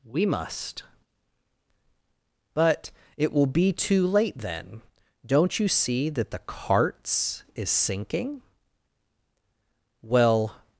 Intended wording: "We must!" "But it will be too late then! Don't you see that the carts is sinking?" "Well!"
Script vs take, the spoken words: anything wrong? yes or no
no